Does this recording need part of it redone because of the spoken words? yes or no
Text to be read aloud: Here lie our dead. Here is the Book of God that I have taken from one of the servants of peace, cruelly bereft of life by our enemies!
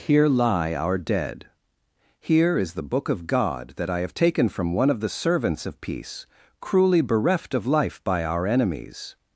no